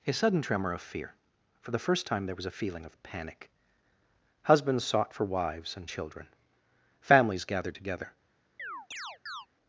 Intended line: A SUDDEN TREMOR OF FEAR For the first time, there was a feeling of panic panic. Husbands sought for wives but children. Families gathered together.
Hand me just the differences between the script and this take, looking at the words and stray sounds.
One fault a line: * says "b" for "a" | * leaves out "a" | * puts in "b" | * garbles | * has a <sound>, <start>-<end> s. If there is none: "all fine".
* leaves out "panic"
* says "and" for "but"
* has a chirp, 8.6-9.5 s